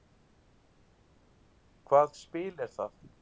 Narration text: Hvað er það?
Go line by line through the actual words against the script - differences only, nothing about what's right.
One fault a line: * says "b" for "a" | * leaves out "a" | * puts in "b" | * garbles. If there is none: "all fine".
* puts in "spil"